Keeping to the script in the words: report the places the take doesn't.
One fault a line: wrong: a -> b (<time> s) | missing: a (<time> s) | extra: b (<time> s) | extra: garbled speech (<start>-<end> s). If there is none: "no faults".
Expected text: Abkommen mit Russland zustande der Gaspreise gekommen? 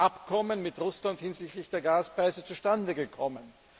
wrong: zustande -> hinsichtlich (1.2 s)
extra: zustande (2.4 s)